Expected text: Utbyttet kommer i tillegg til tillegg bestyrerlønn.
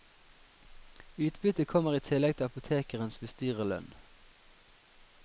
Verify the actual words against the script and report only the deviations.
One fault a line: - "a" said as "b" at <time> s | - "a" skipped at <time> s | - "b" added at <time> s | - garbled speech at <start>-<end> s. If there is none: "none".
- "tillegg" said as "apotekerens" at 2.5 s